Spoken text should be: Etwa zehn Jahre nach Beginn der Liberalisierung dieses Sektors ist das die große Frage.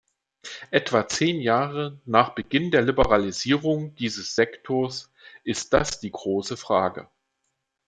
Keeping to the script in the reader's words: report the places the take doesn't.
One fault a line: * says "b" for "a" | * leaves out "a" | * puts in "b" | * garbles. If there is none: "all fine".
all fine